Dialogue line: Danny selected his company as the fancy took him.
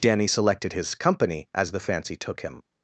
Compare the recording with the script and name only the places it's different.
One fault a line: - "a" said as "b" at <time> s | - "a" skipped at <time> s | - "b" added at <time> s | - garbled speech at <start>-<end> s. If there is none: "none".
none